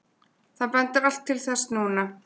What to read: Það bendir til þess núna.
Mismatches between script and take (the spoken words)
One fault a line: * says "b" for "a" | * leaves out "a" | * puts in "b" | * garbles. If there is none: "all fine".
* puts in "allt"